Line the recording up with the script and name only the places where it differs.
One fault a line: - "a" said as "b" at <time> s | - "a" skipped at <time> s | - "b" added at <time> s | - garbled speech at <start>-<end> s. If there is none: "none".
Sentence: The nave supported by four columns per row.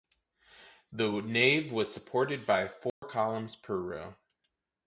- "was" added at 1.7 s